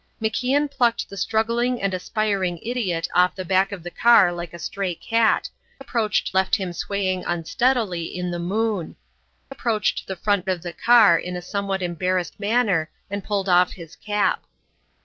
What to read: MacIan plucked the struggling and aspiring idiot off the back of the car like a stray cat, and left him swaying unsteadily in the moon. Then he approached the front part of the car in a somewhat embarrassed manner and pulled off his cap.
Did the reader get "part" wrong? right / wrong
wrong